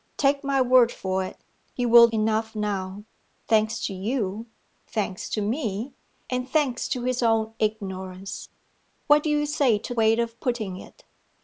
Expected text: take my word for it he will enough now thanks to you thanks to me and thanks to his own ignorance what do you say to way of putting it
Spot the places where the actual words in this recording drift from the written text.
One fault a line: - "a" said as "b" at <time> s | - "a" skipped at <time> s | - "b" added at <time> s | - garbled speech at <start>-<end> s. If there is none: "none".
none